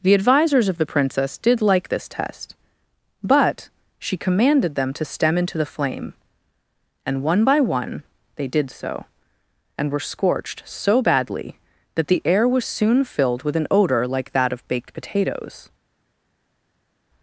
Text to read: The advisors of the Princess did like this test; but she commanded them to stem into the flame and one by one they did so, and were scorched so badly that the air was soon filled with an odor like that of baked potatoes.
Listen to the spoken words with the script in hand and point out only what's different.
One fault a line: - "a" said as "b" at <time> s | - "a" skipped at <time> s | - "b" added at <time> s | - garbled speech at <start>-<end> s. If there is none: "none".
none